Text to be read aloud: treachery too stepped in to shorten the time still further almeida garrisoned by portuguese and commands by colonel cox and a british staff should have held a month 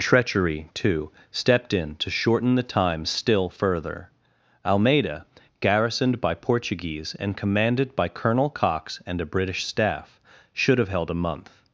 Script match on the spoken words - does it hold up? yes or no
no